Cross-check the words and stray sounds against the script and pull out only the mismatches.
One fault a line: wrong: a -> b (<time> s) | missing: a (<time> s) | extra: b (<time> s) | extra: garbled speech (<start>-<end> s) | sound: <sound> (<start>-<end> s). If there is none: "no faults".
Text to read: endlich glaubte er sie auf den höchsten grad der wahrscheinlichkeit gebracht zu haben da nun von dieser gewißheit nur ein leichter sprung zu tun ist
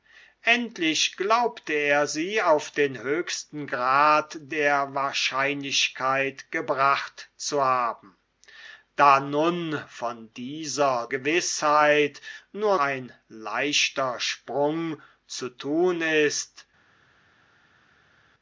no faults